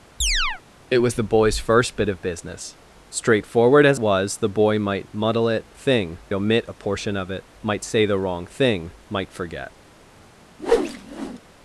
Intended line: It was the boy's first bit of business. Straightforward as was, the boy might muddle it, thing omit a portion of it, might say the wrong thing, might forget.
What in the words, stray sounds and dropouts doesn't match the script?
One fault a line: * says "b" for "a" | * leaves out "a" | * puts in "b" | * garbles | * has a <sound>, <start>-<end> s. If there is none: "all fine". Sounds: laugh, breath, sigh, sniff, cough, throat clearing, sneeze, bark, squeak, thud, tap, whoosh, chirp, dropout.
* has a chirp, 0.2-0.6 s
* has a whoosh, 10.6-11.4 s